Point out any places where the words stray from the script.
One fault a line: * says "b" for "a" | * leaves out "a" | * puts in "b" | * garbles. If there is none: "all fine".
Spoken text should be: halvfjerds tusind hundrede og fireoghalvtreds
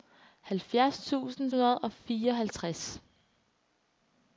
all fine